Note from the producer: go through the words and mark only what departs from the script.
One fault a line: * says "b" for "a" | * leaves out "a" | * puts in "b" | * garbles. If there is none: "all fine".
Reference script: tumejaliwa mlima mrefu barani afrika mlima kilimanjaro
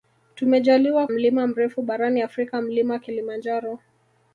all fine